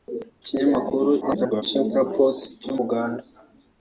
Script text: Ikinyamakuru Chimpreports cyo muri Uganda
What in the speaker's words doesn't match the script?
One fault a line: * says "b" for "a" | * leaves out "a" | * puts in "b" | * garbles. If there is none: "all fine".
* garbles
* leaves out "muri"